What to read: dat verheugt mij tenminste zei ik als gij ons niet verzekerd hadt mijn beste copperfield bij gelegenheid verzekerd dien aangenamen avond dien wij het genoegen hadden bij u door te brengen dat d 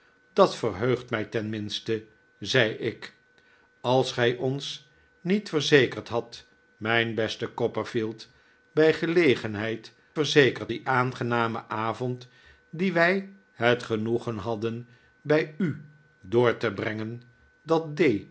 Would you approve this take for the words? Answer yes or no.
yes